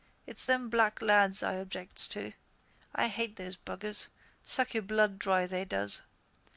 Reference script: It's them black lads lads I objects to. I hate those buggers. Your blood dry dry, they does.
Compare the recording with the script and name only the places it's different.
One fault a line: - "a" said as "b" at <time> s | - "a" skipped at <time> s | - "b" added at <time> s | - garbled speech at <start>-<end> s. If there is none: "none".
- "lads" skipped at 1.4 s
- "Suck" added at 4.5 s
- "dry" skipped at 5.5 s